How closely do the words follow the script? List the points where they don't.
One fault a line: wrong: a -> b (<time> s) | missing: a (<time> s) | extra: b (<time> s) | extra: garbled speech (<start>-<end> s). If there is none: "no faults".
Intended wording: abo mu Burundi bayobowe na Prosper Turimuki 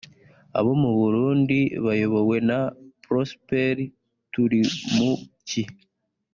no faults